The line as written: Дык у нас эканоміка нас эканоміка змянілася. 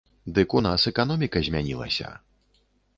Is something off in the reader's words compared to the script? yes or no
yes